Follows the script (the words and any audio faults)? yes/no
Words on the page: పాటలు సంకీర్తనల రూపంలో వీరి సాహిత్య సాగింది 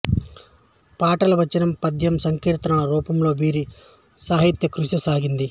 no